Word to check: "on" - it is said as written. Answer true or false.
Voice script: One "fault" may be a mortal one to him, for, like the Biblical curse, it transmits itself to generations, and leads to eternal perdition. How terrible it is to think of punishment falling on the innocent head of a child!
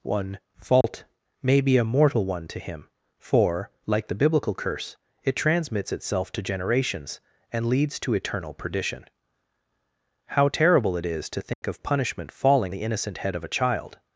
false